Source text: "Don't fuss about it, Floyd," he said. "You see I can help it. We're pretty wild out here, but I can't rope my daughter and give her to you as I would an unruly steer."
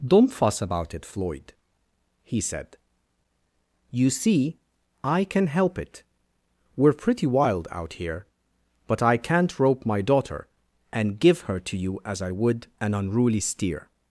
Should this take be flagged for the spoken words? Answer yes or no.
no